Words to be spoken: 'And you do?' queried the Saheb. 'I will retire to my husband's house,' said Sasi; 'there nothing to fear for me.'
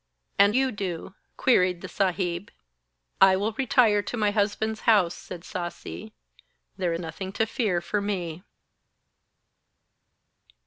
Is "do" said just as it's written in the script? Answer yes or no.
yes